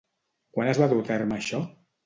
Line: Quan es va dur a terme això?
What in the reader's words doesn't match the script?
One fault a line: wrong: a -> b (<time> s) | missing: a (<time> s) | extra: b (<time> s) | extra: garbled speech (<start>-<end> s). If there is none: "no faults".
no faults